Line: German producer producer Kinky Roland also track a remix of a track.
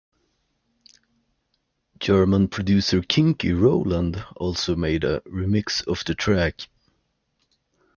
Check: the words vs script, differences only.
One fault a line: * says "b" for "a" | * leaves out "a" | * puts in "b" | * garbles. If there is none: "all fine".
* leaves out "producer"
* says "made" for "track"
* says "the" for "a"